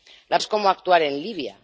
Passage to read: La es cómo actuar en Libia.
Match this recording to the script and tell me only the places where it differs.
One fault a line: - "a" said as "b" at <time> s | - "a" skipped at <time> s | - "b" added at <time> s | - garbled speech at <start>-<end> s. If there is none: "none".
none